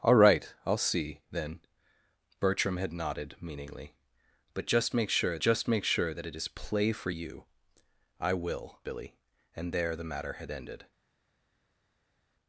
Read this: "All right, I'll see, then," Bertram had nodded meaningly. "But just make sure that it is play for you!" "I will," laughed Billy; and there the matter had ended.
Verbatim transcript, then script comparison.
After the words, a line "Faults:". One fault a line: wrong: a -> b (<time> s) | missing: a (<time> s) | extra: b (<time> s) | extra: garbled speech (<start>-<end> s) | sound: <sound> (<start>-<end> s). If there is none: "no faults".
"All right, I'll see, then," Bertram had nodded meaningly. "But just make sure just make sure that it is play for you!" "I will," Billy; and there the matter had ended.
Faults:
extra: just make sure (5.4 s)
missing: laughed (8.8 s)